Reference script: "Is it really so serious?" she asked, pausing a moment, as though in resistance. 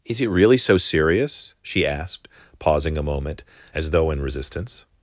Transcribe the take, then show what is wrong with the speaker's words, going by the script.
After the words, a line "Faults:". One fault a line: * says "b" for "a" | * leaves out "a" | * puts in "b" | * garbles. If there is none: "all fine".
"Is it really so serious?" she asked, pausing a moment, as though in resistance.
Faults:
all fine